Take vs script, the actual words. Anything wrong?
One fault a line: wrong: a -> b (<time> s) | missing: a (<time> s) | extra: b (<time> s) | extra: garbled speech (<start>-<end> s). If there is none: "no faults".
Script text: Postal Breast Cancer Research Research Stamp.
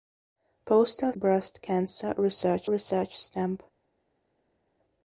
no faults